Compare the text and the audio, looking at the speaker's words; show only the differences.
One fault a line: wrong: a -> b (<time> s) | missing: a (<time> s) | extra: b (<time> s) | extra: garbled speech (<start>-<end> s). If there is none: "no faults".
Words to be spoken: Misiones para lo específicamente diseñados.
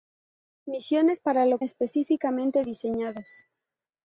no faults